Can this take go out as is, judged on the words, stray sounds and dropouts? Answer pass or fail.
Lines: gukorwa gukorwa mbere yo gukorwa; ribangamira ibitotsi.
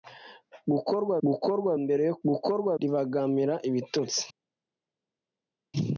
pass